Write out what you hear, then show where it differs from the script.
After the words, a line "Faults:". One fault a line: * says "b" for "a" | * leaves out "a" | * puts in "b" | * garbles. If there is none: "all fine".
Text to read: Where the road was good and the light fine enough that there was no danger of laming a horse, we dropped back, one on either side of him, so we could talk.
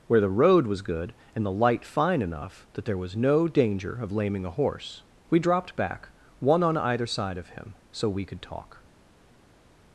Where the road was good and the light fine enough that there was no danger of laming a horse, we dropped back, one on either side of him, so we could talk.
Faults:
all fine